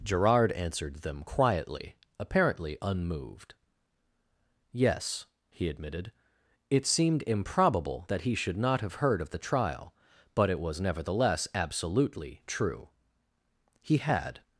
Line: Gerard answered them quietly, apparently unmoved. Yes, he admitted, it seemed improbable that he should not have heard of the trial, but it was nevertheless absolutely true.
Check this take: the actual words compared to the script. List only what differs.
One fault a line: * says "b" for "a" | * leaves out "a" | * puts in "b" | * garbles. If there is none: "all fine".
* puts in "He had"